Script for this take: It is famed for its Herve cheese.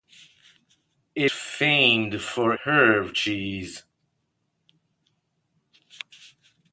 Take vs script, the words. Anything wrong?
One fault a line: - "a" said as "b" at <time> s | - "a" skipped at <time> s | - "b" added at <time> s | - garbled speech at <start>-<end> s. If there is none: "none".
- "is" skipped at 1.3 s
- "its" skipped at 2.5 s